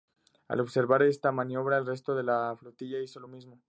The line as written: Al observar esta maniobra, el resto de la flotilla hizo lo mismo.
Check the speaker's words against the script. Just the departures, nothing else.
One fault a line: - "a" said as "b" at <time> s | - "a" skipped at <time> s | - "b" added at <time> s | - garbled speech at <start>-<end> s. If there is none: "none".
none